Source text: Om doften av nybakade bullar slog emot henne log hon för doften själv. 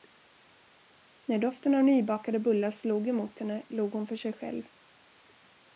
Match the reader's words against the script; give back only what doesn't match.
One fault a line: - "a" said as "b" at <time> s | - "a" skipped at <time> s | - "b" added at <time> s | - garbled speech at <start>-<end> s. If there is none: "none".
- "Om" said as "När" at 1.2 s
- "doften" said as "sig" at 4.1 s